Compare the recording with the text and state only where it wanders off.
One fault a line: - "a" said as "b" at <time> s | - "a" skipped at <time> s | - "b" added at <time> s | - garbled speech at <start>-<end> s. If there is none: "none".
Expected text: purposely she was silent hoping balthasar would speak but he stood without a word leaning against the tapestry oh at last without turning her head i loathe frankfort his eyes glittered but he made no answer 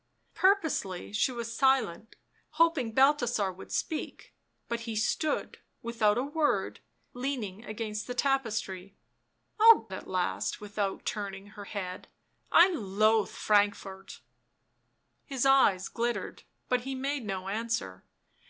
none